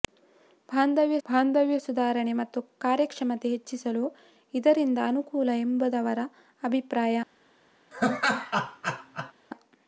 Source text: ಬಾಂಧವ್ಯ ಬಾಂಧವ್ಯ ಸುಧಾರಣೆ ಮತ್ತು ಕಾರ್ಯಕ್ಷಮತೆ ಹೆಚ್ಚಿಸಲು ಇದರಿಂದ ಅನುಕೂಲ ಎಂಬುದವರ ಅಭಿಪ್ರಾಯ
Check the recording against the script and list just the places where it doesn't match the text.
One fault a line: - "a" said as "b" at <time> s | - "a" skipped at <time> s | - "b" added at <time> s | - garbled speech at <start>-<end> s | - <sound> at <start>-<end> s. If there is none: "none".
- laugh at 7.9-9.3 s